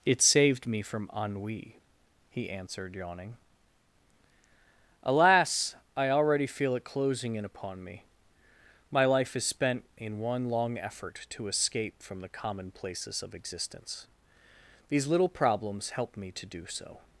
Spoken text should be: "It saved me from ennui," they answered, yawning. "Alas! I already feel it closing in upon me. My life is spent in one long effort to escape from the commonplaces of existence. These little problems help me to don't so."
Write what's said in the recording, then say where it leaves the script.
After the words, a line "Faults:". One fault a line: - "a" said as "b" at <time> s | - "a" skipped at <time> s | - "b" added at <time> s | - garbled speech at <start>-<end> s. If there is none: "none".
"It saved me from ennui," he answered, yawning. "Alas! I already feel it closing in upon me. My life is spent in one long effort to escape from the commonplaces of existence. These little problems help me to do so."
Faults:
- "they" said as "he" at 2.3 s
- "don't" said as "do" at 16.5 s